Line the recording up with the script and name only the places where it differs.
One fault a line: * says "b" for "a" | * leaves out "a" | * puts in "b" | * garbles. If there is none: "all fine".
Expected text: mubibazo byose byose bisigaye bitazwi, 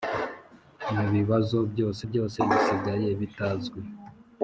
all fine